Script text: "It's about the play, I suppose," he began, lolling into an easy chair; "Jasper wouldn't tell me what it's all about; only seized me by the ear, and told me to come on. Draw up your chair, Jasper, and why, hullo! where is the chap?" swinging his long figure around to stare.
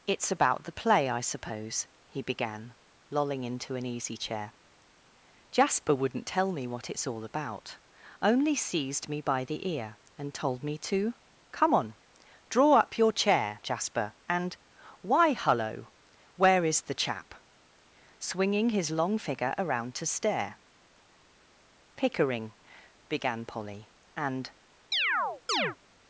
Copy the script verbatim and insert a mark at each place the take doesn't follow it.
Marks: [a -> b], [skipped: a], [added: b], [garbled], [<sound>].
"It's about the play, I suppose," he began, lolling into an easy chair; "Jasper wouldn't tell me what it's all about; only seized me by the ear, and told me to come on. Draw up your chair, Jasper, and why, hullo! where is the chap?" swinging his long figure around to stare. [added: Pickering began Polly and] [chirp]